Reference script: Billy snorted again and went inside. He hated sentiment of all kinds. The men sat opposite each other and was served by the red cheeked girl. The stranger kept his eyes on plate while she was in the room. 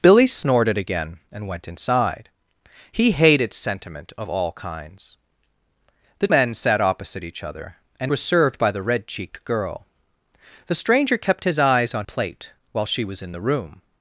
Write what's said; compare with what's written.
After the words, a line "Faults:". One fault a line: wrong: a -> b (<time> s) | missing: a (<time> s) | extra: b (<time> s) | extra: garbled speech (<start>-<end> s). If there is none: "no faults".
Billy snorted again and went inside. He hated sentiment of all kinds. The men sat opposite each other and was served by the red cheeked girl. The stranger kept his eyes on plate while she was in the room.
Faults:
no faults